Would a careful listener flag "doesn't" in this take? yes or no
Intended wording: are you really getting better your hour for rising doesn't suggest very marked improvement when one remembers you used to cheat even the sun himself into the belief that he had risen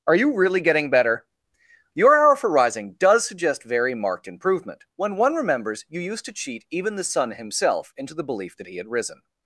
yes